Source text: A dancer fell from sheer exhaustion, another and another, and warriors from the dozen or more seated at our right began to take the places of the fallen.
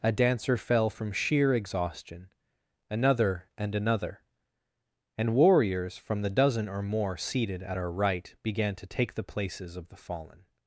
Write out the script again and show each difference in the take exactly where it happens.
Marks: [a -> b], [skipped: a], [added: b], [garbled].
A dancer fell from sheer exhaustion, another and another, and warriors from the dozen or more seated at our right began to take the places of the fallen.